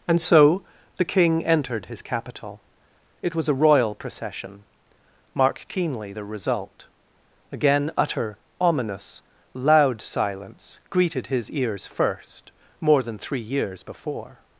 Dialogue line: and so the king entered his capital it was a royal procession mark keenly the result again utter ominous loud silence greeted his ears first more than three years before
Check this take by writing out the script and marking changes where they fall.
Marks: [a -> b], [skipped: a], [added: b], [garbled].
and so the king entered his capital it was a royal procession mark keenly the result again utter ominous loud silence greeted his ears first more than three years before